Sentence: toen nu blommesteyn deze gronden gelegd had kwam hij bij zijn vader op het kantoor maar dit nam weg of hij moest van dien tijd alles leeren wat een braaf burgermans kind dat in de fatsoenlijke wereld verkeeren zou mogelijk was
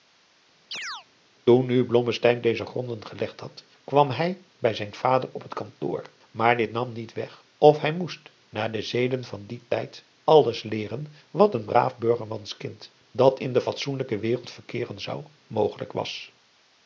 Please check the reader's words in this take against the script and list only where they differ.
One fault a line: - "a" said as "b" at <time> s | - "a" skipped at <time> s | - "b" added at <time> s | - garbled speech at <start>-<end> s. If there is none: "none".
- "niet" added at 6.9 s
- "naar de zeden" added at 8.5 s